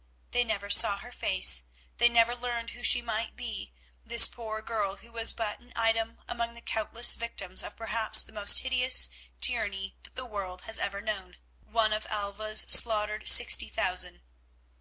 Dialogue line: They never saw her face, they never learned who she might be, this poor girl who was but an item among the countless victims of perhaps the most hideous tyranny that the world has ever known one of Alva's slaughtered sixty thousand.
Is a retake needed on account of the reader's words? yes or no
no